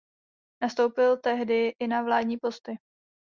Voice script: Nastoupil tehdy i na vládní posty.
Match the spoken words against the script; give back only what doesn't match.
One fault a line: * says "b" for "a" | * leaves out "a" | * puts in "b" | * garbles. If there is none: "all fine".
all fine